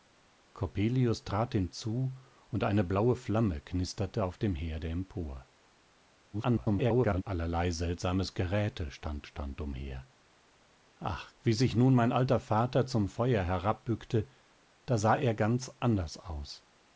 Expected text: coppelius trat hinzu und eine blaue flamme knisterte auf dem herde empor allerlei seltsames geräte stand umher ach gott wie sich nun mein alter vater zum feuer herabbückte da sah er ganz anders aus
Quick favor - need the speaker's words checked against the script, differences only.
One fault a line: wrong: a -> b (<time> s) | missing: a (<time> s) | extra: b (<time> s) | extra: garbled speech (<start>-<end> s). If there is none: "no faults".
extra: garbled speech (6.3-7.2 s)
extra: stand (9.2 s)
missing: gott (11.3 s)